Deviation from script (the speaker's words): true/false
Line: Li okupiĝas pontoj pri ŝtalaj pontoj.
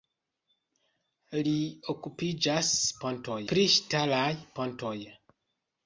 false